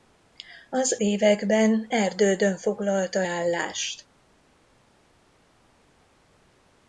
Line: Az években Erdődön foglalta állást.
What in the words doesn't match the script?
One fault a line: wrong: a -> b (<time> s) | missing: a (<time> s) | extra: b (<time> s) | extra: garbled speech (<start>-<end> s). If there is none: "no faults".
no faults